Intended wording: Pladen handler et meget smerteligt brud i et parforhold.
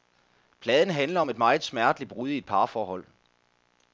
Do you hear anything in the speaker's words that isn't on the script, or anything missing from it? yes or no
yes